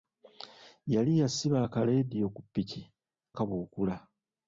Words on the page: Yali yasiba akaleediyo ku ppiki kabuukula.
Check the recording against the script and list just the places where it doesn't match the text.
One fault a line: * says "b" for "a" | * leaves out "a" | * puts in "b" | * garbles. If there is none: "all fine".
all fine